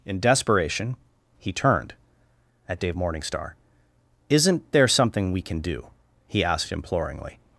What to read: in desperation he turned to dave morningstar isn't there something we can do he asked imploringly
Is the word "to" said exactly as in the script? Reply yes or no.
no